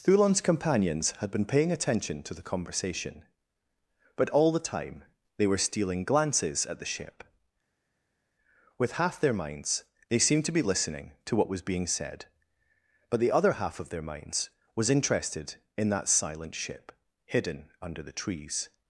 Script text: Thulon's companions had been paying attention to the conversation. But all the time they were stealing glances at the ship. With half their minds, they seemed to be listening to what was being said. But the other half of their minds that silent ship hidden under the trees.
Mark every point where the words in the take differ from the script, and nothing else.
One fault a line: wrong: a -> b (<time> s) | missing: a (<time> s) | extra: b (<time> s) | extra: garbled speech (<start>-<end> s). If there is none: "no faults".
extra: was interested in (14.7 s)